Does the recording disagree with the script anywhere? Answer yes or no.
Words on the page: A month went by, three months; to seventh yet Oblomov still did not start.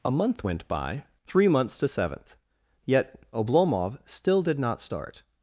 no